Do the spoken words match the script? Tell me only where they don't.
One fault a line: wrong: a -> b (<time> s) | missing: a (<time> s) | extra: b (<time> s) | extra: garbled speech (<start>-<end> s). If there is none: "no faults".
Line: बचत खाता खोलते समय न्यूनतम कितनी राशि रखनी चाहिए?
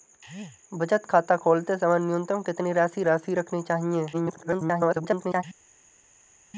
extra: राशि (3.0 s)
extra: garbled speech (4.1-5.4 s)